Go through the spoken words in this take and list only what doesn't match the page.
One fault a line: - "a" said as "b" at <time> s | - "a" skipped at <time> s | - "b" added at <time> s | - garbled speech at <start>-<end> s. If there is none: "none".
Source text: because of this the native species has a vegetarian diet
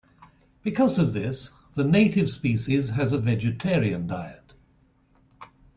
none